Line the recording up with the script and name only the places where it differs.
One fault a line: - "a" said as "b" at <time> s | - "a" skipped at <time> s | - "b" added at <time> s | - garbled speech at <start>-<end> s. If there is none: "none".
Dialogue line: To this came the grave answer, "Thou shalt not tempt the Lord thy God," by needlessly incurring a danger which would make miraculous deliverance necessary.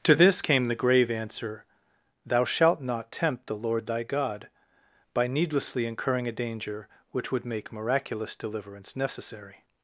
none